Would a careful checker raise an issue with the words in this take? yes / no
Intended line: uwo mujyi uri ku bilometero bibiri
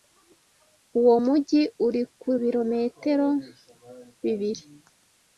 no